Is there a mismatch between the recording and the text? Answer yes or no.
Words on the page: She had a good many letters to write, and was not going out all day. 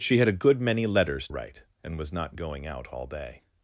yes